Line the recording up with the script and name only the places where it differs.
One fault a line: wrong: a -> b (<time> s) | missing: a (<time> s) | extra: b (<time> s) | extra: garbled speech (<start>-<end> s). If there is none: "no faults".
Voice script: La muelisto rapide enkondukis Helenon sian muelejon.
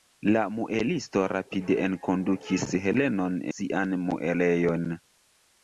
no faults